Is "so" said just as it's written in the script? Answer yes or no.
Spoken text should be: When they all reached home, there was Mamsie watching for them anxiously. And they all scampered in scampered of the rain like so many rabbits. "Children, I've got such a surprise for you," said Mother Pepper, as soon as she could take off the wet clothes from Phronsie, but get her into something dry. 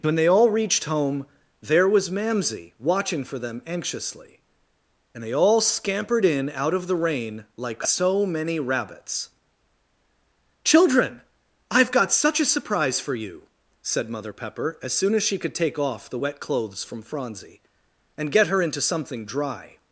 yes